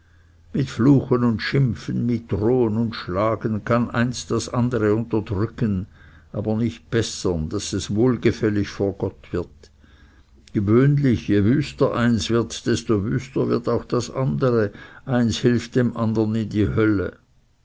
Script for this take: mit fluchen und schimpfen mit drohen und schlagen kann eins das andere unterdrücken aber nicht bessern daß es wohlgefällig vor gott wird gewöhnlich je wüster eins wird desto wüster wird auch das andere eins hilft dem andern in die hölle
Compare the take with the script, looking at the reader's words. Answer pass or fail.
pass